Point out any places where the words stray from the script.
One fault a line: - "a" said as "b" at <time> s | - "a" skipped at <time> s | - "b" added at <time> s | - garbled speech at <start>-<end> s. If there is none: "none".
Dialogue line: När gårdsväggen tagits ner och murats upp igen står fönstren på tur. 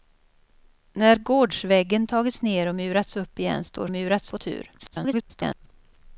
- "fönstren" said as "murats" at 3.9 s
- garbled speech at 4.8-5.7 s